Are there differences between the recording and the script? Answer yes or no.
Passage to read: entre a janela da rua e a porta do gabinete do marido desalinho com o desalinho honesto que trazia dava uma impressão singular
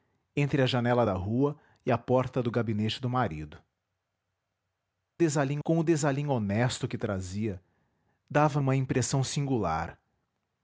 no